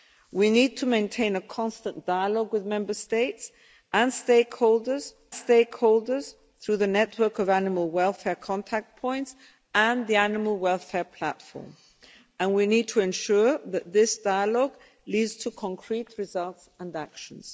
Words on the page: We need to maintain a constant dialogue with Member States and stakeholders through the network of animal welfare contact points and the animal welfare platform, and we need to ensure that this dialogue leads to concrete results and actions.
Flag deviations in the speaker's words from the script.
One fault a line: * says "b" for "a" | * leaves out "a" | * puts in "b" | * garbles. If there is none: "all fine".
* puts in "stakeholders"